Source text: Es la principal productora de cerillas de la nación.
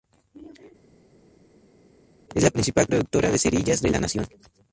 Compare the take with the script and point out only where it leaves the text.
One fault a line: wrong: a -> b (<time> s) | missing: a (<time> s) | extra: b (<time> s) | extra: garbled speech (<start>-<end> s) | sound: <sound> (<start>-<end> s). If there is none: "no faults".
no faults